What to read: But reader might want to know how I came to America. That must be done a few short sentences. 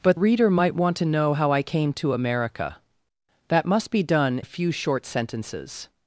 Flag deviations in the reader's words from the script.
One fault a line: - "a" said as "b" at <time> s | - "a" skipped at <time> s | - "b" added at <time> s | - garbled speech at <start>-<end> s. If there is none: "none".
none